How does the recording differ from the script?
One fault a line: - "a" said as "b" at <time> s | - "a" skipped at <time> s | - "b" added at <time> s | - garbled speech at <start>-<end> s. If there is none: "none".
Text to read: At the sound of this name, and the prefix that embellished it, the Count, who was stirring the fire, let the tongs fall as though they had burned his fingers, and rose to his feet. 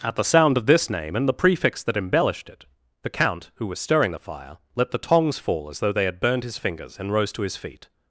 none